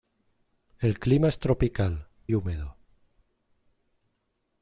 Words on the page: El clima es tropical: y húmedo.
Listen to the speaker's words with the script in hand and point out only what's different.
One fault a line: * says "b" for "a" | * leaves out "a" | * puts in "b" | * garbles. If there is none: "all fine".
all fine